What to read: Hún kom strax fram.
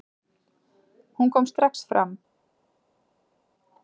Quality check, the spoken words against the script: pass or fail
pass